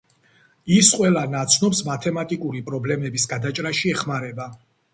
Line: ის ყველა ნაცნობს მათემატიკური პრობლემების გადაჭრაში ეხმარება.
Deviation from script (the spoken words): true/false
false